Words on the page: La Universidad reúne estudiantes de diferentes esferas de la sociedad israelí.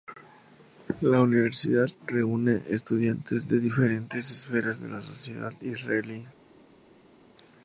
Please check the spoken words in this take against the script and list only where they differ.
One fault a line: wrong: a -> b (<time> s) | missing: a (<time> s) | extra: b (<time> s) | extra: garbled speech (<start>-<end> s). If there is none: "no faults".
no faults